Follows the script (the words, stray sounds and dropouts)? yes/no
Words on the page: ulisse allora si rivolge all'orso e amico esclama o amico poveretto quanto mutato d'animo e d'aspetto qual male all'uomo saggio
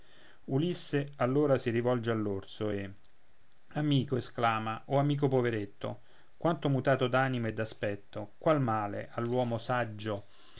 yes